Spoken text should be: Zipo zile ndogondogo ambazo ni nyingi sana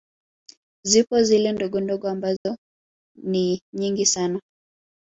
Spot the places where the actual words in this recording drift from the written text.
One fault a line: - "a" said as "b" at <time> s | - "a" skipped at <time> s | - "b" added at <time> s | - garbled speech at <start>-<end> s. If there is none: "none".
none